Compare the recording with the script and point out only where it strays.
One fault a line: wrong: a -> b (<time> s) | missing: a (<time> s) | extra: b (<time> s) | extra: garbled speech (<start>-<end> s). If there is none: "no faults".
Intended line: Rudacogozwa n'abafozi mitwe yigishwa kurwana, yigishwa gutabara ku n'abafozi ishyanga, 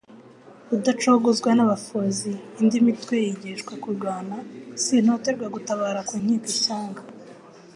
extra: indi (2.6 s)
wrong: yigishwa -> sintoterwa (4.8 s)
wrong: n'abafozi -> nkiko (6.2 s)